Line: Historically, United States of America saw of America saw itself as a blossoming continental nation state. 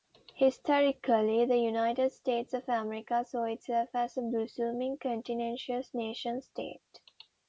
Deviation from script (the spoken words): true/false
true